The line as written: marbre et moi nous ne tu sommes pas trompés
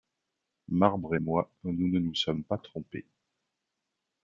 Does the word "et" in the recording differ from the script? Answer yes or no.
no